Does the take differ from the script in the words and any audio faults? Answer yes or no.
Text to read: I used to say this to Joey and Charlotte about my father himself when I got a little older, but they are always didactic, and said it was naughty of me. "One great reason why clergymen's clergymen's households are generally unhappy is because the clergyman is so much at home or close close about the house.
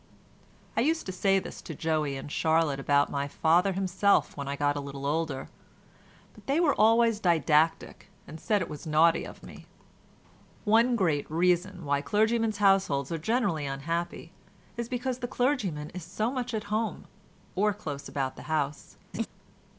yes